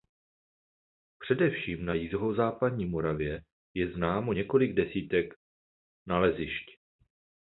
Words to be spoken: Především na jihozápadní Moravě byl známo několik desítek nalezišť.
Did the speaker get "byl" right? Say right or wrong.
wrong